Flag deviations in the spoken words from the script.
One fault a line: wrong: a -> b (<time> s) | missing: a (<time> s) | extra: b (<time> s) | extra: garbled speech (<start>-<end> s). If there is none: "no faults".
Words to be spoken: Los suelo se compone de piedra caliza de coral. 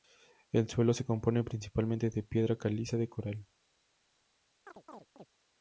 wrong: Los -> El (0.5 s)
extra: principalmente (1.4 s)